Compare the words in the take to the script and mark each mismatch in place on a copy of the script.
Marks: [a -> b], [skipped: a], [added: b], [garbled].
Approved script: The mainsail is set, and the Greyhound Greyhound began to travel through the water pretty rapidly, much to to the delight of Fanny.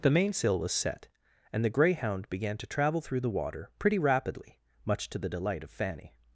The mainsail [is -> was] set, and the Greyhound [skipped: Greyhound] began to travel through the water pretty rapidly, much to [skipped: to] the delight of Fanny.